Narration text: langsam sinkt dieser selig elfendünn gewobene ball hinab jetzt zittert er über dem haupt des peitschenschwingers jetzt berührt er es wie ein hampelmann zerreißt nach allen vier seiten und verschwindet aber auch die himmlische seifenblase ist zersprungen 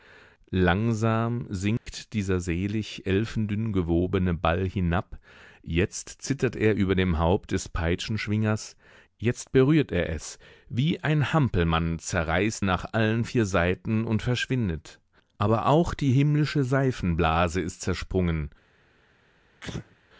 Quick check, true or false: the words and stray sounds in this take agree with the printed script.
false